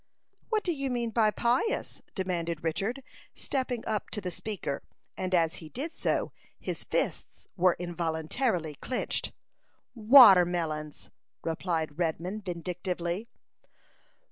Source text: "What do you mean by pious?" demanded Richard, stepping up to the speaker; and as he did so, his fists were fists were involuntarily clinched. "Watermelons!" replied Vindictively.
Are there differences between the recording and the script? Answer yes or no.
yes